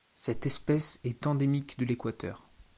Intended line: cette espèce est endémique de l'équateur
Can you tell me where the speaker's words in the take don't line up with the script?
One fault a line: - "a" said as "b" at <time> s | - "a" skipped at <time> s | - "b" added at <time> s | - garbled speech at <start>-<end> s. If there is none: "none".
none